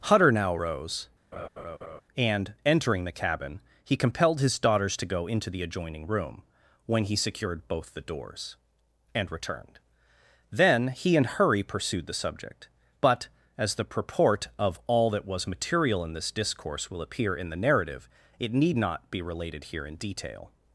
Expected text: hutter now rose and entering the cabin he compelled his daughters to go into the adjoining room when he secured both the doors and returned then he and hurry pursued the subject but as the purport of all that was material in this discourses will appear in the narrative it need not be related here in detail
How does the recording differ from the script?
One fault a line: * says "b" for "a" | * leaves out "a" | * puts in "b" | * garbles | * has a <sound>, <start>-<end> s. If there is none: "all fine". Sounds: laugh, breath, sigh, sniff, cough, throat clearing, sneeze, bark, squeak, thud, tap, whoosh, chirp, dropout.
* has a laugh, 1.3-2.0 s
* says "discourse" for "discourses"